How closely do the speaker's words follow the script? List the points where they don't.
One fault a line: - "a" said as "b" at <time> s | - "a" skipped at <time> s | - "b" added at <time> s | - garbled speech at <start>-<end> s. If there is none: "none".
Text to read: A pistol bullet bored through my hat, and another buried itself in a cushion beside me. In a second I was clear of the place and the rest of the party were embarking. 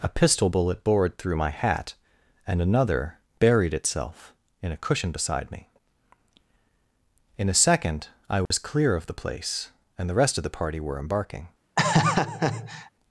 none